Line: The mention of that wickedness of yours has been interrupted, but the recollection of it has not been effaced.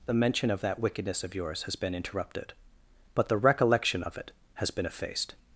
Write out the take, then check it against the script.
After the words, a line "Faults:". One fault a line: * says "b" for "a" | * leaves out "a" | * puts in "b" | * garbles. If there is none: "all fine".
The mention of that wickedness of yours has been interrupted, but the recollection of it has been effaced.
Faults:
* leaves out "not"